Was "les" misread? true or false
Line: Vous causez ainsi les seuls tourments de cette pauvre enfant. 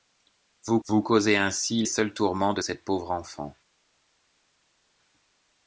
true